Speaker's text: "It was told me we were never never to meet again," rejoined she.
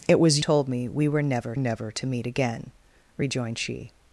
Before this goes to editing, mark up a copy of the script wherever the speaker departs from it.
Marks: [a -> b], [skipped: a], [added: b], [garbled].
"It was told me we were never never to meet again," rejoined she.